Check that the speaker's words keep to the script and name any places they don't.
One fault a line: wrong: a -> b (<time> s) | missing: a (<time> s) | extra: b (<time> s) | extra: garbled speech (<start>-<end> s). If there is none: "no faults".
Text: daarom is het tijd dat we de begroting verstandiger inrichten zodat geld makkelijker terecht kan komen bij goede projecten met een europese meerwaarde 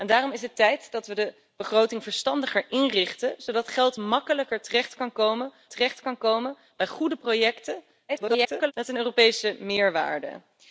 extra: terecht kan komen (5.7 s)
extra: garbled speech (8.1-8.7 s)